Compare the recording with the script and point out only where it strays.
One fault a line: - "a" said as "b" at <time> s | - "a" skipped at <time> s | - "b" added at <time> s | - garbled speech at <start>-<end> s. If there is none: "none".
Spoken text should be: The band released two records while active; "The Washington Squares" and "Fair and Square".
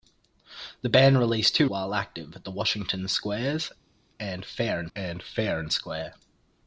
- "records" skipped at 1.7 s
- "and Fair and" added at 4.9 s